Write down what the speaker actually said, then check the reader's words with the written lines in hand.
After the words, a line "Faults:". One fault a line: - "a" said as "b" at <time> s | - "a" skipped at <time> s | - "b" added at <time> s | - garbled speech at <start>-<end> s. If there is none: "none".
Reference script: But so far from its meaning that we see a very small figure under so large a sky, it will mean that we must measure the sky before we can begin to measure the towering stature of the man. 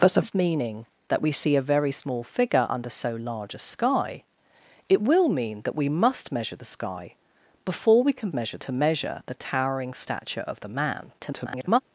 But so its meaning that we see a very small figure under so large a sky, it will mean that we must measure the sky before we can measure to measure the towering stature of the man. [garbled]
Faults:
- "far from" skipped at 0.2 s
- "begin" said as "measure" at 8.3 s
- garbled speech at 11.2-11.8 s